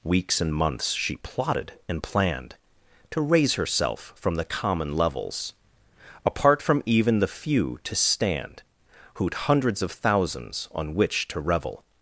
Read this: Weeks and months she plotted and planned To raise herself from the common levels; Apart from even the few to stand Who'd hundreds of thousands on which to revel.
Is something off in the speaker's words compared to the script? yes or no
no